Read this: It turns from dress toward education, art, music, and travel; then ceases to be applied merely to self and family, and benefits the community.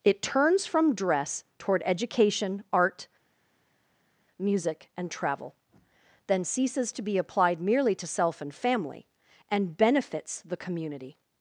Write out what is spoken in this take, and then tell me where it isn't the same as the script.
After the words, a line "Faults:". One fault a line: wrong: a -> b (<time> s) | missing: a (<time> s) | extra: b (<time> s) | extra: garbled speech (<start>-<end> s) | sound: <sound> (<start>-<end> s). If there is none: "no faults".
It turns from dress toward education, art, music, and travel; then ceases to be applied merely to self and family, and benefits the community.
Faults:
no faults